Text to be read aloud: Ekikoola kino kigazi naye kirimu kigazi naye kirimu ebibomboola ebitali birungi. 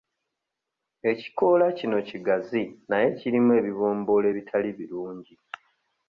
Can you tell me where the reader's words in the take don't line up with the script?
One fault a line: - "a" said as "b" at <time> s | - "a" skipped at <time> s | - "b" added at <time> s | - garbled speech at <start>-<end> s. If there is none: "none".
- "kigazi naye kirimu" skipped at 3.5 s